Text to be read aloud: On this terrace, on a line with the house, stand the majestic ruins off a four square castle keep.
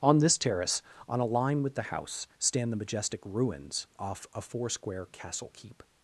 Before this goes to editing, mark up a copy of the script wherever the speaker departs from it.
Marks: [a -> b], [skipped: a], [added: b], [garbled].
On this terrace, on a line with the house, stand the majestic ruins off a four square castle keep.